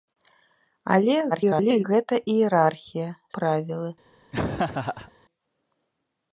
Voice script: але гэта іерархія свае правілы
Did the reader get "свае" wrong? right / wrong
wrong